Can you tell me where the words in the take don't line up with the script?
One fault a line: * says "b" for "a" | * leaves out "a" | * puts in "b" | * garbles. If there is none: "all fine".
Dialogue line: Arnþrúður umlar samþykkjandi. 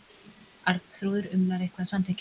* puts in "eitthvað"